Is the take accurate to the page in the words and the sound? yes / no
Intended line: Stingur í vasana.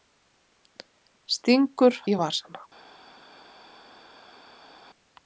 yes